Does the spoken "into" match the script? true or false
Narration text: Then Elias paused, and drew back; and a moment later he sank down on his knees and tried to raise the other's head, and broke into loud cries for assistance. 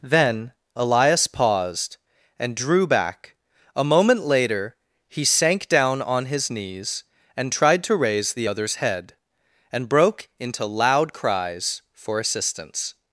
true